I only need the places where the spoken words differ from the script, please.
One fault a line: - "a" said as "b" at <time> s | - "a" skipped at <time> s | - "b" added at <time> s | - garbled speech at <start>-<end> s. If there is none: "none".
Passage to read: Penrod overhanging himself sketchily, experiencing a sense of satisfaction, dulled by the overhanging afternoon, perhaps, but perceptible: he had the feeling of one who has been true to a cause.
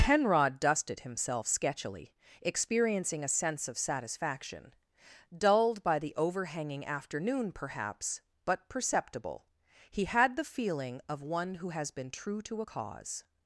- "overhanging" said as "dusted" at 0.6 s